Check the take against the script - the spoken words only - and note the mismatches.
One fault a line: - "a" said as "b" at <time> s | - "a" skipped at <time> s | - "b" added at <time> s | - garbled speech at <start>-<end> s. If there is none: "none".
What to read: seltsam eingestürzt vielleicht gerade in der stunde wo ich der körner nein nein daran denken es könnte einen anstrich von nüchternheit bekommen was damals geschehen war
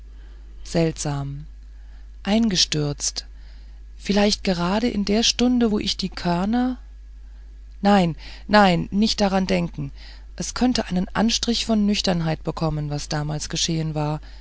- "der" said as "die" at 6.0 s
- "nicht" added at 8.9 s